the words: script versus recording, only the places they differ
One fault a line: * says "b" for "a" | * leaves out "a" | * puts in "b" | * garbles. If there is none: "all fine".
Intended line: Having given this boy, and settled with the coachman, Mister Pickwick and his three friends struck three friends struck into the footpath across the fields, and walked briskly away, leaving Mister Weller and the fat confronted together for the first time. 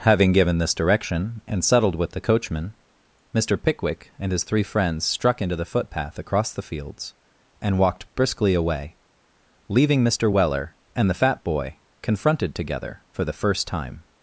* says "direction" for "boy"
* leaves out "three friends struck"
* puts in "boy"